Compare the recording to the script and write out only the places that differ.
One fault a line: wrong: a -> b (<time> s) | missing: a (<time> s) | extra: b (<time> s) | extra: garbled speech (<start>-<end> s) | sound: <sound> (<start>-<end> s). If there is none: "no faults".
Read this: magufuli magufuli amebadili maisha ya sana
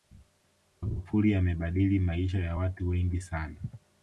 missing: magufuli (1.4 s)
extra: watu wengi (2.5 s)